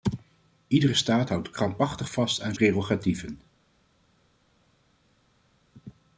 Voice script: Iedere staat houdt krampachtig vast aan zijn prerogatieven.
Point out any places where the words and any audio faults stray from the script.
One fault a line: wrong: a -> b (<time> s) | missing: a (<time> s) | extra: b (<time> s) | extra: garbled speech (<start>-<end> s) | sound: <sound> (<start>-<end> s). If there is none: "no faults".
missing: zijn (2.6 s)